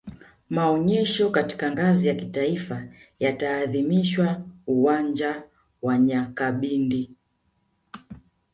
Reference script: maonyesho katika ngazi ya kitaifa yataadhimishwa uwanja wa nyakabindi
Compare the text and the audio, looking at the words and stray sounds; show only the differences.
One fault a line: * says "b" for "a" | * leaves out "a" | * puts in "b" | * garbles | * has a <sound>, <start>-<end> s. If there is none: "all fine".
all fine